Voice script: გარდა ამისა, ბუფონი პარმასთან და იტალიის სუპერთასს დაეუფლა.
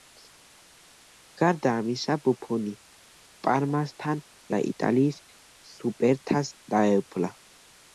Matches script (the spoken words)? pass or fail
pass